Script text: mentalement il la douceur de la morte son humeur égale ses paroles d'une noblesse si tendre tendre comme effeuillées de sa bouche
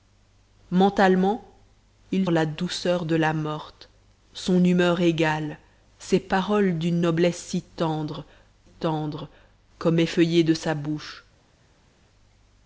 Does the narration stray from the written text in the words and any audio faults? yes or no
no